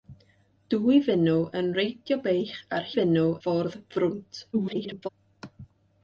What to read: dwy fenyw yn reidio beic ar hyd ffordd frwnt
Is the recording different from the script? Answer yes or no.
yes